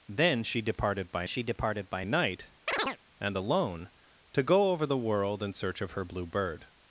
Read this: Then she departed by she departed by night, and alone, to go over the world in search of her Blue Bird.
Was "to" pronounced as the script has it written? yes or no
yes